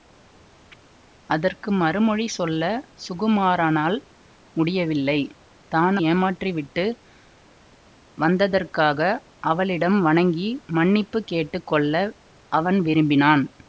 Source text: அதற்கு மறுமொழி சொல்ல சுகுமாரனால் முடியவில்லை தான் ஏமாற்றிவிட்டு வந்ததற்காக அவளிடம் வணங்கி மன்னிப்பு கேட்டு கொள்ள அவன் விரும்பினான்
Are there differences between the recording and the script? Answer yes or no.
no